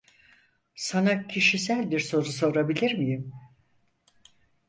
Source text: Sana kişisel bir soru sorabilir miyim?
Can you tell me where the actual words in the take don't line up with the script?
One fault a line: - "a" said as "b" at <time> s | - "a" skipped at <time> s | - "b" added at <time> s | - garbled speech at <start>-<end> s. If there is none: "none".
none